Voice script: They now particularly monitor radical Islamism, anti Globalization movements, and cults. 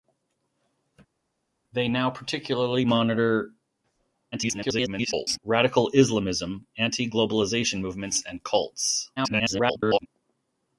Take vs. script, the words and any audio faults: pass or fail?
fail